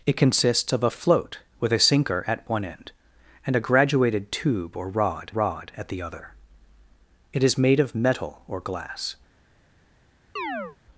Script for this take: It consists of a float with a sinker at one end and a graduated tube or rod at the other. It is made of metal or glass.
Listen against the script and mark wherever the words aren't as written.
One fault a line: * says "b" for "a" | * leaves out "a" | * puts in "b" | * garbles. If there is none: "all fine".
* puts in "rod"